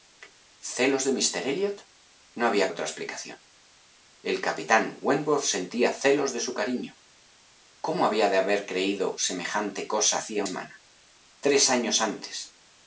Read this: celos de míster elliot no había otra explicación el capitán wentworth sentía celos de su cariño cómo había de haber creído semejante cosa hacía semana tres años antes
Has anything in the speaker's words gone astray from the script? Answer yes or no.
no